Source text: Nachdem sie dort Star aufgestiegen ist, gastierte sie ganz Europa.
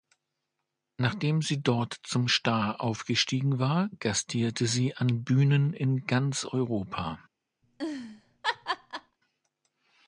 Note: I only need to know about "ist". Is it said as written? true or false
false